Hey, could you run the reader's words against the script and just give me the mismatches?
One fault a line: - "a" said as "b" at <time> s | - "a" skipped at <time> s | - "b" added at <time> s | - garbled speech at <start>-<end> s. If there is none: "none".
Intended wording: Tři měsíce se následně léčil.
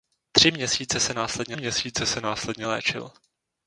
- "měsíce se následně" added at 1.5 s